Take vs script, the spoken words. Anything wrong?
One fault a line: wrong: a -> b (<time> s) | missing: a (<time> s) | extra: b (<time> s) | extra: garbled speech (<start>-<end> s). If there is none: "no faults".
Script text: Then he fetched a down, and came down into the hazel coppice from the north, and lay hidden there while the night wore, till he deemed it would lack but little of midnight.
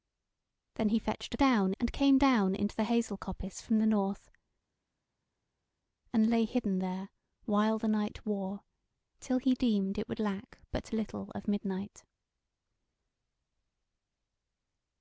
no faults